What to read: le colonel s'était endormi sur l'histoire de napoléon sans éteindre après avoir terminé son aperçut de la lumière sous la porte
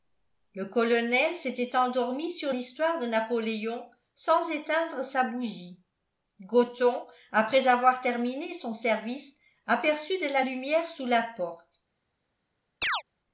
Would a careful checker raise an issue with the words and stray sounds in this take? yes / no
yes